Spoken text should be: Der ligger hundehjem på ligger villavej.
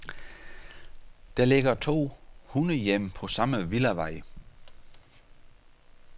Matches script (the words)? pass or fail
fail